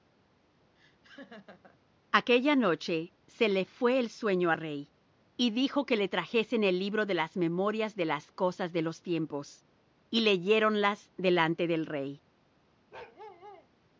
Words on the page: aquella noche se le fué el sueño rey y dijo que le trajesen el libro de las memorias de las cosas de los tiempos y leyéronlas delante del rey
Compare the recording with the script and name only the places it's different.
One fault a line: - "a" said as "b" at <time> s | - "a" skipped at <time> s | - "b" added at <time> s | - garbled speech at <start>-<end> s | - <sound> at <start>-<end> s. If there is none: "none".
- laugh at 0.8-1.8 s
- bark at 12.9-13.7 s